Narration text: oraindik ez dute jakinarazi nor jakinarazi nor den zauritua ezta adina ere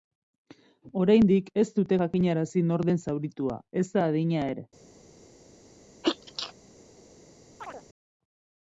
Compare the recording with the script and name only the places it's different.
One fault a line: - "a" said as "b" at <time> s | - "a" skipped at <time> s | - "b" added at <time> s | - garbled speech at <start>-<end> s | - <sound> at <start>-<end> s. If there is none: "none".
- "jakinarazi nor" skipped at 2.8 s
- sneeze at 6.0-6.5 s
- chirp at 7.6-7.8 s